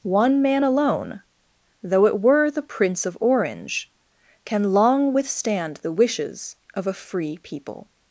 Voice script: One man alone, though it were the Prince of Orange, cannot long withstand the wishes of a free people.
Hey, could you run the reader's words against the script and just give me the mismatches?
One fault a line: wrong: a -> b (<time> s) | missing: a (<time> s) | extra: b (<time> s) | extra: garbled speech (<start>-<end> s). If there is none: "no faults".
wrong: cannot -> can (4.5 s)